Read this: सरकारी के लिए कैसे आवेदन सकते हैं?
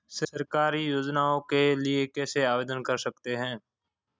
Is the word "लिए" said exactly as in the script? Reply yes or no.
yes